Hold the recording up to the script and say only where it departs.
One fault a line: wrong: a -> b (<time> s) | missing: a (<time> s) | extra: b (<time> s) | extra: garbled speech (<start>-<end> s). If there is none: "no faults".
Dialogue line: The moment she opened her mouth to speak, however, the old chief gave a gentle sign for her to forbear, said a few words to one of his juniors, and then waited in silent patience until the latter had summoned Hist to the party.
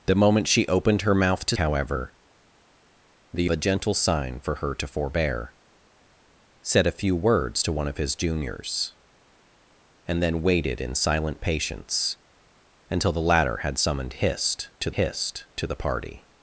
missing: speak (1.6 s)
missing: old chief gave (3.5 s)
extra: Hist to (14.9 s)